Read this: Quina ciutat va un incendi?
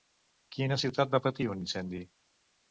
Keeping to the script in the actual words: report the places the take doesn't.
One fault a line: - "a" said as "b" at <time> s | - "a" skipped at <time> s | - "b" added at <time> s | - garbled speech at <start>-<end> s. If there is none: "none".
- "patir" added at 1.3 s